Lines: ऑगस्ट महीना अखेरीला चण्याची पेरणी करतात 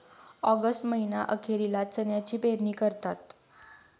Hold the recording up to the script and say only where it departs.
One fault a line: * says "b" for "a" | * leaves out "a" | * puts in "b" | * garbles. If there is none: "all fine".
all fine